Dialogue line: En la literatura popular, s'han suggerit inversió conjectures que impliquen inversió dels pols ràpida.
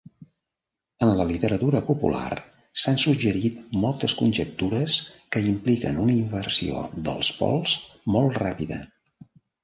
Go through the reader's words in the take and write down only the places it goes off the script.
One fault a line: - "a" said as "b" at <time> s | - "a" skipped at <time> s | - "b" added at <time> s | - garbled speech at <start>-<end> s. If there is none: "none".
- "inversió" said as "moltes" at 3.8 s
- "una" added at 6.0 s
- "molt" added at 8.2 s